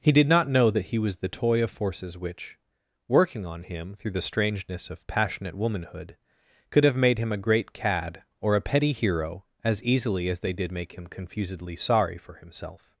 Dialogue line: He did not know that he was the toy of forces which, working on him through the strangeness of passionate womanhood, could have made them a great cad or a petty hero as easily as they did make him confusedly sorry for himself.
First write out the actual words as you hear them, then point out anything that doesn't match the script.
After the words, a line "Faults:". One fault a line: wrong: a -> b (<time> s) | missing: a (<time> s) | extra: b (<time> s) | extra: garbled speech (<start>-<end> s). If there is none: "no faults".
He did not know that he was the toy of forces which, working on him through the strangeness of passionate womanhood, could have made him a great cad or a petty hero as easily as they did make him confusedly sorry for himself.
Faults:
wrong: them -> him (7.2 s)